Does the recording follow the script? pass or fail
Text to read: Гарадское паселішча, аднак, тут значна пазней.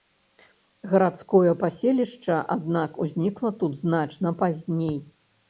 fail